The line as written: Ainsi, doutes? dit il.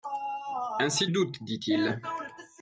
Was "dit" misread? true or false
false